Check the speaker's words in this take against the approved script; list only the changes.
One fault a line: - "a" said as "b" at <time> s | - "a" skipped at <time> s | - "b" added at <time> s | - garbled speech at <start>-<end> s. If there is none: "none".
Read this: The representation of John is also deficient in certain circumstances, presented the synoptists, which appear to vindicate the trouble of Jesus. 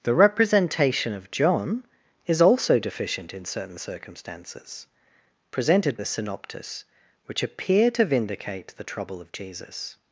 none